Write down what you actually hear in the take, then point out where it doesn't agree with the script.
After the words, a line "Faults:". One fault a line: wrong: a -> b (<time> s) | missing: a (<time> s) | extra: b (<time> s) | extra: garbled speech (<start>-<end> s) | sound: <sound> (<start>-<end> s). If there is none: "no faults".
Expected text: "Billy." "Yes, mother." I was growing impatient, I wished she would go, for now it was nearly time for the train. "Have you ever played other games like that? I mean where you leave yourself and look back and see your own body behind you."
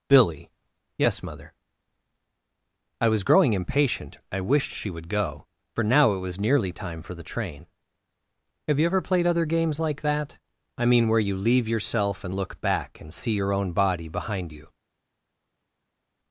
"Billy." "Yes, mother." I was growing impatient, I wished she would go, for now it was nearly time for the train. "Have you ever played other games like that? I mean where you leave yourself and look back and see your own body behind you."
Faults:
no faults